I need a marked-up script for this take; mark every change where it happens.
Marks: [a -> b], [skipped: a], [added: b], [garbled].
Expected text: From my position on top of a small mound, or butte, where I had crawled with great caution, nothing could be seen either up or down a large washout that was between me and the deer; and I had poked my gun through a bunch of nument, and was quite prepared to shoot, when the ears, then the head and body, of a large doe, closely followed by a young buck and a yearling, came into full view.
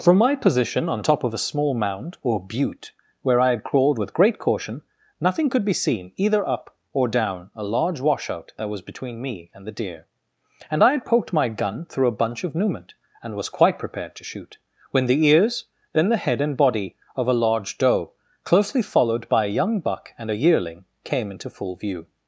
From my position on top of a small mound, or butte, where I had crawled with great caution, nothing could be seen either up or down a large washout that was between me and the deer; and I had poked my gun through a bunch of nument, and was quite prepared to shoot, when the ears, then the head and body, of a large doe, closely followed by a young buck and a yearling, came into full view.